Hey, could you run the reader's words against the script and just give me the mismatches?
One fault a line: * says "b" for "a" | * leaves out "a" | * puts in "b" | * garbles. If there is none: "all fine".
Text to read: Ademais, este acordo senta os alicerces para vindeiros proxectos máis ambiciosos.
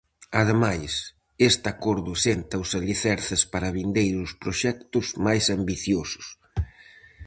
all fine